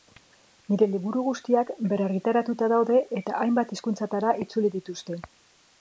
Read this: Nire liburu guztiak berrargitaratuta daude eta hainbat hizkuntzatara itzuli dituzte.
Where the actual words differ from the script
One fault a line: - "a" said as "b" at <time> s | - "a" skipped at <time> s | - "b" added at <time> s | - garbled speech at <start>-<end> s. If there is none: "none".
none